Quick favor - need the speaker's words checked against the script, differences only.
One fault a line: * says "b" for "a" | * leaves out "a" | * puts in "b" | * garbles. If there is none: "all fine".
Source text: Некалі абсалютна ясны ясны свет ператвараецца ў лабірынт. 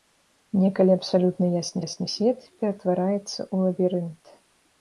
all fine